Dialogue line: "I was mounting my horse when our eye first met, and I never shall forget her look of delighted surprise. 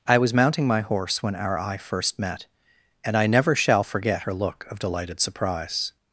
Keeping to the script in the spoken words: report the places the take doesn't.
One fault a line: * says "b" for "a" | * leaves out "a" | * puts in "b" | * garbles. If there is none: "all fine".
all fine